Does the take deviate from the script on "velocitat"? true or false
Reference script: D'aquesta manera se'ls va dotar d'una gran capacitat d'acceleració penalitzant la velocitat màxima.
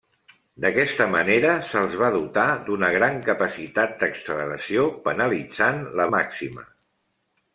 true